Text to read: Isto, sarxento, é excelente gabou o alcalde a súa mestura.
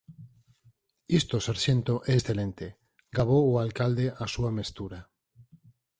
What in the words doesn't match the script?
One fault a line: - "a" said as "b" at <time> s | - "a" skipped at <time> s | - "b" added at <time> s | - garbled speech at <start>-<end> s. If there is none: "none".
none